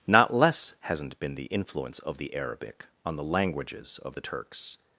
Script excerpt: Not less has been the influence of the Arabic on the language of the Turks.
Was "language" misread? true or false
true